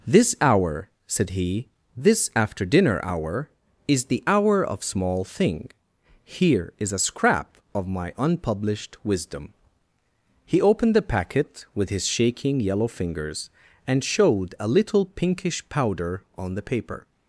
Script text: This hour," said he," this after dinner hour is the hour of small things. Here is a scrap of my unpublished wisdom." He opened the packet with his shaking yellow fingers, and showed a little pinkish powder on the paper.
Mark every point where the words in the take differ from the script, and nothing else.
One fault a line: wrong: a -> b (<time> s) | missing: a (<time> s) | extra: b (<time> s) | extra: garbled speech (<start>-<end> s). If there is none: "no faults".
wrong: things -> thing (5.2 s)